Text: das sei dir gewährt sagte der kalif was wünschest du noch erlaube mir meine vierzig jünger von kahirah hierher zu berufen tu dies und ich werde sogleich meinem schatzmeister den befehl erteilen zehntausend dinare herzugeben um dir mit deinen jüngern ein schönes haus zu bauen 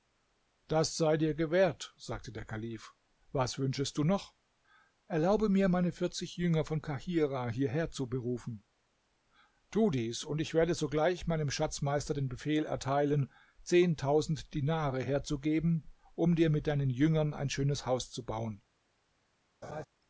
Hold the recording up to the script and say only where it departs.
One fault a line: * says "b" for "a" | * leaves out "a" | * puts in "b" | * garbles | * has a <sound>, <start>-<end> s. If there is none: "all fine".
* has a laugh, 19.6-19.8 s